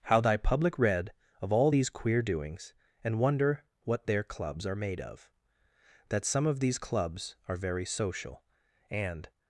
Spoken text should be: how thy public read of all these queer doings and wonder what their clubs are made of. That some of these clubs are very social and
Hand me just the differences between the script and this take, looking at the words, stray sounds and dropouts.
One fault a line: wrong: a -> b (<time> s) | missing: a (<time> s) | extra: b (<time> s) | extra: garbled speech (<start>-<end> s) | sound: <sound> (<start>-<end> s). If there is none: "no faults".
no faults